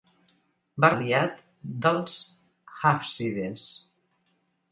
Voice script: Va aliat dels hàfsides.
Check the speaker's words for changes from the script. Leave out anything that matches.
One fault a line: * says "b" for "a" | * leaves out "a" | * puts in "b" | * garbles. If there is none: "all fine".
all fine